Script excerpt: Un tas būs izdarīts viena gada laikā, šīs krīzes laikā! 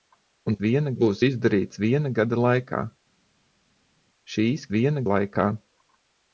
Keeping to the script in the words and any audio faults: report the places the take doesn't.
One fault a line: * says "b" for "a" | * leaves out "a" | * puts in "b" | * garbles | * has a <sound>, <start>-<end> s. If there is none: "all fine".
* says "viena" for "tas"
* says "viena" for "krīzes"